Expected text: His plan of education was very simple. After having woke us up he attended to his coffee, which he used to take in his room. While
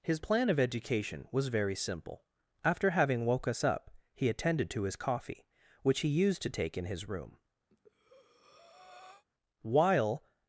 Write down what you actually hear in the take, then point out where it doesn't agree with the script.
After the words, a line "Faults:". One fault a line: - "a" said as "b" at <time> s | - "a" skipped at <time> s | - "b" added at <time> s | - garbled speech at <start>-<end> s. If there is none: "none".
His plan of education was very simple. After having woke us up he attended to his coffee, which he used to take in his room. While
Faults:
none